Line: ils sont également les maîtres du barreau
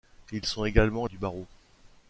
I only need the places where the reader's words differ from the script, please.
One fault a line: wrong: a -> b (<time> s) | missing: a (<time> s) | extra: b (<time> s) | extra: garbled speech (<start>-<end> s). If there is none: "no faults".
missing: les maîtres (1.1 s)